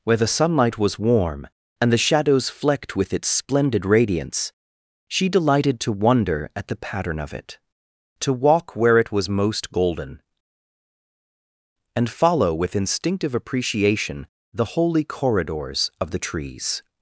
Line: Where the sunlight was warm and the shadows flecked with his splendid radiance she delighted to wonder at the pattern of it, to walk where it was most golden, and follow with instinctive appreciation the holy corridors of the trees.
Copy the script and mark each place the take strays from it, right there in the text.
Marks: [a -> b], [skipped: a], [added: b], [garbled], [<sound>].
Where the sunlight was warm and the shadows flecked with [his -> its] splendid radiance she delighted to wonder at the pattern of it, to walk where it was most golden, and follow with instinctive appreciation the holy corridors of the trees.